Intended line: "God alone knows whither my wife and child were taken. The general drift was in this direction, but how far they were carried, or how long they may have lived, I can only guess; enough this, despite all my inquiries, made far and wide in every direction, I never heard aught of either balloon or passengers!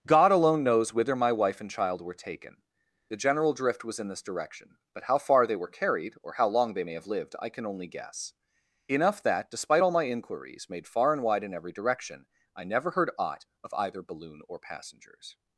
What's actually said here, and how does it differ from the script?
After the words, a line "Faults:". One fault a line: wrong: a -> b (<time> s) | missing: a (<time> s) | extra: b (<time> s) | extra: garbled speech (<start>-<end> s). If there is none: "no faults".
"God alone knows whither my wife and child were taken. The general drift was in this direction, but how far they were carried, or how long they may have lived, I can only guess; enough that, despite all my inquiries, made far and wide in every direction, I never heard aught of either balloon or passengers!
Faults:
wrong: this -> that (9.2 s)